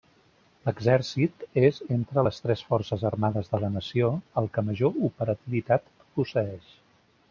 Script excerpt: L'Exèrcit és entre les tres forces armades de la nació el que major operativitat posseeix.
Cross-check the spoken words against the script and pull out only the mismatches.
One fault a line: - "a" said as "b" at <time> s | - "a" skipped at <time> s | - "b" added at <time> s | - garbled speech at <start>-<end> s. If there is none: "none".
none